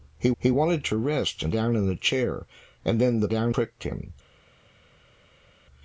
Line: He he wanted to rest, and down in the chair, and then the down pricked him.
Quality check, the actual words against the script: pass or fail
pass